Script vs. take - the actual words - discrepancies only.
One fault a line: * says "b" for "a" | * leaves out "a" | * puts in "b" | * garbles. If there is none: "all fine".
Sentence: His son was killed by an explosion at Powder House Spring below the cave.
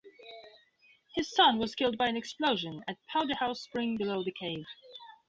all fine